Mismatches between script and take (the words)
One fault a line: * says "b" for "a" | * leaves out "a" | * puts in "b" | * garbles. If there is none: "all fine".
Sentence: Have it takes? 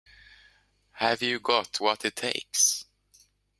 * puts in "you got what"